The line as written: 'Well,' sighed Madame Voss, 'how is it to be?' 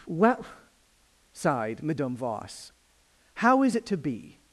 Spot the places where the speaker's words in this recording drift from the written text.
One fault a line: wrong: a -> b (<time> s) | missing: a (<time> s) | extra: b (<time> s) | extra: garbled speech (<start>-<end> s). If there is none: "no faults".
no faults